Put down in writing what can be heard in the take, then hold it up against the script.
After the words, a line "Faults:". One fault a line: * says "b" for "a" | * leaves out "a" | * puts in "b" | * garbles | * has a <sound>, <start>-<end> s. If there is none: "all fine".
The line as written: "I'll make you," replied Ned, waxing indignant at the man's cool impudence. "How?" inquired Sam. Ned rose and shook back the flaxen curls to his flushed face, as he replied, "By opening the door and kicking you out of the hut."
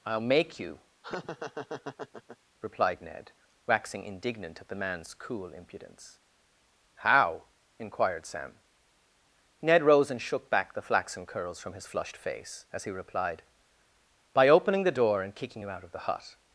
"I'll make you," replied Ned, waxing indignant at the man's cool impudence. "How?" inquired Sam. Ned rose and shook back the flaxen curls from his flushed face, as he replied, "By opening the door and kicking you out of the hut."
Faults:
* has a laugh, 1.0-2.4 s
* says "from" for "to"